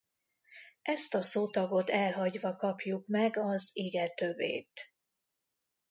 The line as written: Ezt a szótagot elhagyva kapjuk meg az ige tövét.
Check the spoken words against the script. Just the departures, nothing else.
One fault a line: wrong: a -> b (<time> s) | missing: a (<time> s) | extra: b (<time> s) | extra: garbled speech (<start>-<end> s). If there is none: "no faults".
no faults